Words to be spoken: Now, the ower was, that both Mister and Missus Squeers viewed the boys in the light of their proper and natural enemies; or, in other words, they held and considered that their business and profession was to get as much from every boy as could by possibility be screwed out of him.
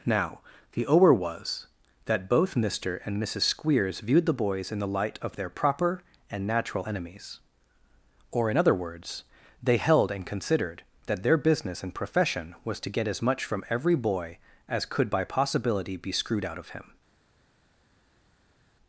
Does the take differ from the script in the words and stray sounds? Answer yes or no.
no